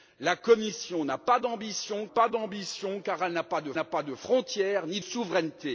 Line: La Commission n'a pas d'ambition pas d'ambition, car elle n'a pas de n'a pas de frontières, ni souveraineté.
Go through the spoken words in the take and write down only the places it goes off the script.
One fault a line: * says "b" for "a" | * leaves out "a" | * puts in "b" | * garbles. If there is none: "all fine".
all fine